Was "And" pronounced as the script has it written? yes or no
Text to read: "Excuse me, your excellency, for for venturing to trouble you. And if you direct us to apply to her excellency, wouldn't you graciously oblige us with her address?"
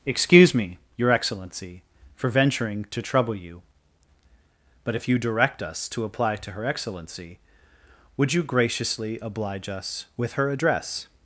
no